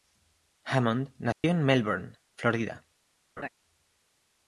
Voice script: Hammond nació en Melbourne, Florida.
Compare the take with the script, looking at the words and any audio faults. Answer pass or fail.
fail